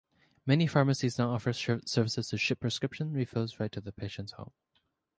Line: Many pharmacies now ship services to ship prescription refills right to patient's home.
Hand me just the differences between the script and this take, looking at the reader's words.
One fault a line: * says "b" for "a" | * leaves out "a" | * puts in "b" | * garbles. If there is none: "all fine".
* says "offer" for "ship"
* puts in "the"